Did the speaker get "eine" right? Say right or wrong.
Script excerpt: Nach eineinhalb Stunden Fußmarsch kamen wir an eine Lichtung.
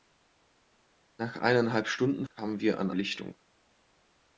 wrong